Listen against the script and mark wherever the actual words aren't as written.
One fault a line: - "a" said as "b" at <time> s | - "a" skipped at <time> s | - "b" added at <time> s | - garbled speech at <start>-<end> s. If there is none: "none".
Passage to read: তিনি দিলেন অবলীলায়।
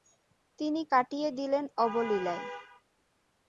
- "কাটিয়ে" added at 0.9 s